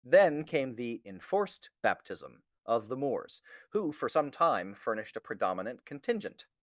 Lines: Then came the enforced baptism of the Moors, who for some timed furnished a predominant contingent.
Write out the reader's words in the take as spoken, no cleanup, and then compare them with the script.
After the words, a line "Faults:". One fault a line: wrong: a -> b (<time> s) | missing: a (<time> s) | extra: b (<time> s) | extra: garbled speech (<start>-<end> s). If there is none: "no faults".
Then came the enforced baptism of the Moors, who for some time furnished a predominant contingent.
Faults:
wrong: timed -> time (4.3 s)